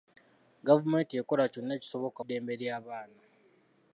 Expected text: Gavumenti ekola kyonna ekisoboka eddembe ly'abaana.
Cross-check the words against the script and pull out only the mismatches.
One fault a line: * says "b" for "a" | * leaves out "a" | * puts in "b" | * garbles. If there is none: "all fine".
all fine